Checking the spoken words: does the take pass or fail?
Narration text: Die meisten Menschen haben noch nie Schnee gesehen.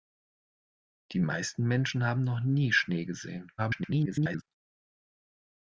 fail